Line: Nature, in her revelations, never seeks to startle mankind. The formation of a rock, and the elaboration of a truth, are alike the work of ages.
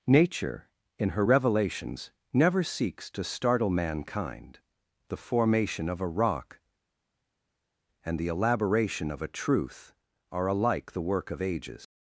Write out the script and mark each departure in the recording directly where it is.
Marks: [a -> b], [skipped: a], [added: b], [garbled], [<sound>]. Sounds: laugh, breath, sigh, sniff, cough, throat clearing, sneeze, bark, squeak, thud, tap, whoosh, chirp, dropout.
Nature, in her revelations, never seeks to startle mankind. The formation of a rock, and the elaboration of a truth, are alike the work of ages.